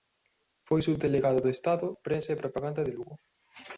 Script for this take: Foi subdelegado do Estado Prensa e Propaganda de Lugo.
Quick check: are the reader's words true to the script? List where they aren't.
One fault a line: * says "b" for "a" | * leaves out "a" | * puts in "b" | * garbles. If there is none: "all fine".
all fine